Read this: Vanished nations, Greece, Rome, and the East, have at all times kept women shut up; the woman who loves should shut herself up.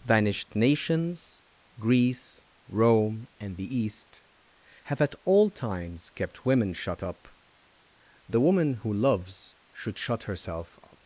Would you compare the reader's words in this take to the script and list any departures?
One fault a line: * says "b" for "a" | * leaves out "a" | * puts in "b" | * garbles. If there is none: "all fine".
all fine